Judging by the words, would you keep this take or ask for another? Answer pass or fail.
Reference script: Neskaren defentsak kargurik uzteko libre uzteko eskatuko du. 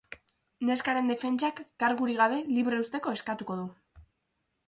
fail